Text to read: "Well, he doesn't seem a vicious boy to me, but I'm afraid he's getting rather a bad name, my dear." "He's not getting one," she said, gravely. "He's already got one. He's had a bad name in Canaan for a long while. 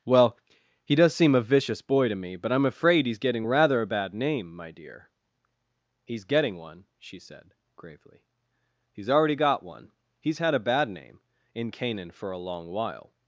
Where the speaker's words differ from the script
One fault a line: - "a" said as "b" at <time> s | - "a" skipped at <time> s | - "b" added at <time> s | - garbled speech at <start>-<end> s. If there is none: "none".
- "doesn't" said as "does" at 0.9 s
- "not" skipped at 6.2 s